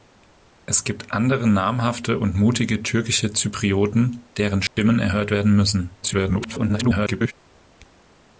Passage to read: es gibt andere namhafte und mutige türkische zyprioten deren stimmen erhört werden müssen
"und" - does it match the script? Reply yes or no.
yes